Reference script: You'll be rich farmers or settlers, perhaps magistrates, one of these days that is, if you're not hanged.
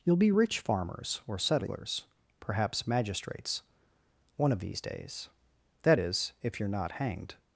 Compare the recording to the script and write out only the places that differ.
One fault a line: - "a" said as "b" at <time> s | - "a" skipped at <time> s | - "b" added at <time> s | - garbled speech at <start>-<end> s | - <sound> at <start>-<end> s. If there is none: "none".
none